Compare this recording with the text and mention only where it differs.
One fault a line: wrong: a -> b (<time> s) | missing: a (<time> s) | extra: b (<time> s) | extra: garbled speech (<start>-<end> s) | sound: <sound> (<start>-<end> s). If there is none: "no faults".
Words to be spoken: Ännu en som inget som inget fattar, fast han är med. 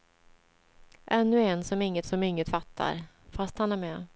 no faults